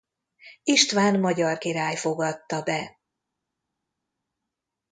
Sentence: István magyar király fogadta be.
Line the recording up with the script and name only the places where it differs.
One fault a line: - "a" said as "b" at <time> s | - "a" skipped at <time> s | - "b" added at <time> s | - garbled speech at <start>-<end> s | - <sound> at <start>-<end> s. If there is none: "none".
none